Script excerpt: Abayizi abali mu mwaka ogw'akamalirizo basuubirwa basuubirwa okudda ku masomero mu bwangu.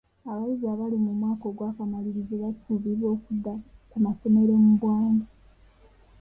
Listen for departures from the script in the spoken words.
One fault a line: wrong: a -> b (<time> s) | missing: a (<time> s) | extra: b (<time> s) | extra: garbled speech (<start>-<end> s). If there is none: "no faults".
missing: basuubirwa (3.1 s)